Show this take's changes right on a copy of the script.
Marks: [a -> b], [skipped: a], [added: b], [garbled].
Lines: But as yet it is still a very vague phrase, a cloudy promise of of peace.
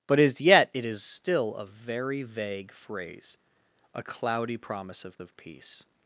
But as yet it is still a very vague phrase, a cloudy promise of of peace.